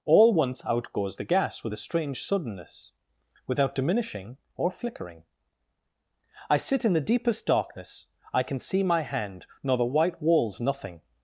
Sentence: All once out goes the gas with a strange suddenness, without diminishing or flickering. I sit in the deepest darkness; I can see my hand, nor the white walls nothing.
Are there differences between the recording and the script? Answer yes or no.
no